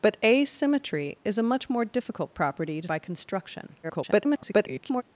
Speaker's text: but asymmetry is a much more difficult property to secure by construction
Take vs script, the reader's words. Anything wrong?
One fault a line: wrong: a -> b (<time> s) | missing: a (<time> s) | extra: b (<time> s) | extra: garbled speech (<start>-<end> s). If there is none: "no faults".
missing: secure (2.9 s)
extra: garbled speech (3.8-5.0 s)